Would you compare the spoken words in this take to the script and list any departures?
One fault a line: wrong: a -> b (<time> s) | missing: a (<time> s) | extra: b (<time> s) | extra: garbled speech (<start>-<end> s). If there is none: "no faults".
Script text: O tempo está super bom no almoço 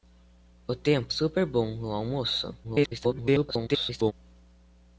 missing: está (1.1 s)
extra: garbled speech (2.6-4.1 s)